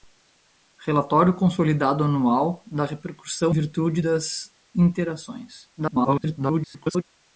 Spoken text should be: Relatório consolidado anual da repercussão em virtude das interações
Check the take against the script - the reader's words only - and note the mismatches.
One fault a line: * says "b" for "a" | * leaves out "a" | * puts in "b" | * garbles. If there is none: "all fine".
* leaves out "em"
* garbles